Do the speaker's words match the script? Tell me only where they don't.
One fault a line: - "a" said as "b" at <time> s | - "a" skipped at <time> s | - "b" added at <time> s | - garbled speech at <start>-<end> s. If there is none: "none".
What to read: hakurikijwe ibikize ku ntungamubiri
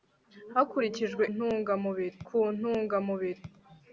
- "ibikize" said as "ntungamubiri" at 1.3 s